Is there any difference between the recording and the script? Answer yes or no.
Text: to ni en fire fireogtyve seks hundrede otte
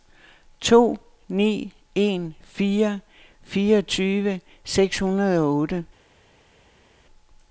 yes